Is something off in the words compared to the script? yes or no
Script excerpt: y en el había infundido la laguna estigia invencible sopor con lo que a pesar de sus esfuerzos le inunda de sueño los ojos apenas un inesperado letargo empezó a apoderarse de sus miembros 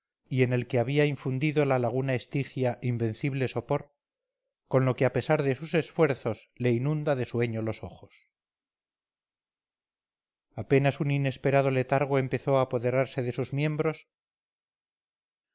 yes